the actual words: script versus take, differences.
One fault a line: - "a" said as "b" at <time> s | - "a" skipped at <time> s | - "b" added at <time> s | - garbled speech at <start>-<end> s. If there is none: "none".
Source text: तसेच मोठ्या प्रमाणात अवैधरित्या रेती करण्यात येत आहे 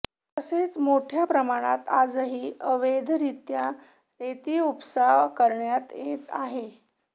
- "आजही" added at 1.9 s
- "उपसा" added at 4.6 s